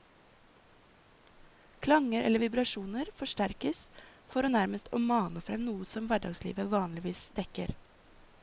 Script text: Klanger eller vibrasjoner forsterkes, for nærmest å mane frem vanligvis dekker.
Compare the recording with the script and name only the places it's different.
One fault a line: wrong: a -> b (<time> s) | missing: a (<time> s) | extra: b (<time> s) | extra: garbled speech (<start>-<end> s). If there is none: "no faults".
extra: noe som hverdagslivet (5.6 s)